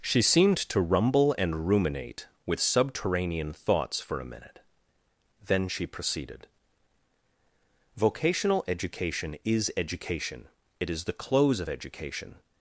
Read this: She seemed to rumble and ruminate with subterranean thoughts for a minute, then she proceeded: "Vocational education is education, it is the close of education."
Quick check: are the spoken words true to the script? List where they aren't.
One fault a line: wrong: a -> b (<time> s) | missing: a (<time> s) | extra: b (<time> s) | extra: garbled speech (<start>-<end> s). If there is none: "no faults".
no faults